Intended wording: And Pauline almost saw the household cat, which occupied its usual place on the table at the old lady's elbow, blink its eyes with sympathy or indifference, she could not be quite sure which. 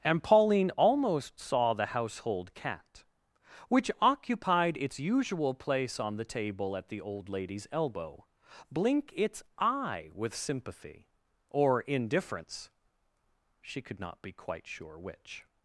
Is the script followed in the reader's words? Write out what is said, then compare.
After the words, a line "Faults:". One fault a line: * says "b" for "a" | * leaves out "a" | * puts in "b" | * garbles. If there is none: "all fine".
And Pauline almost saw the household cat, which occupied its usual place on the table at the old lady's elbow, blink its eye with sympathy or indifference, she could not be quite sure which.
Faults:
* says "eye" for "eyes"